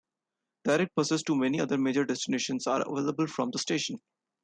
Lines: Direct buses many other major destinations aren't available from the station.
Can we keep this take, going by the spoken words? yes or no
no